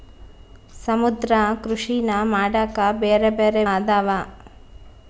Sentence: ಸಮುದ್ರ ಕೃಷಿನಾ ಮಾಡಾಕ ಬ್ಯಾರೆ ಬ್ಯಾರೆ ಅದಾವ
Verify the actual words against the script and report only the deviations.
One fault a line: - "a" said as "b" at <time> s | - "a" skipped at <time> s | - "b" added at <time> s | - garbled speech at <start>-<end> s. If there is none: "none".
none